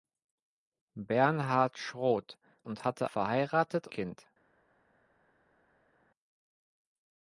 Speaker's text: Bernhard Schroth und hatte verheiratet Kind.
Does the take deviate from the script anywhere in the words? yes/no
no